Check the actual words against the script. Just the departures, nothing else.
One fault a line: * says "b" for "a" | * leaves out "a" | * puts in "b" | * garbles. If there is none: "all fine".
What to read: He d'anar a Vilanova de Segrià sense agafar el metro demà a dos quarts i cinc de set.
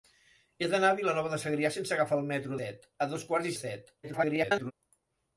* says "set" for "demà"
* leaves out "cinc"
* garbles